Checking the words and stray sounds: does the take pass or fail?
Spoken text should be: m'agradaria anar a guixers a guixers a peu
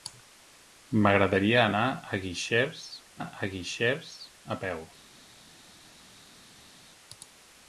pass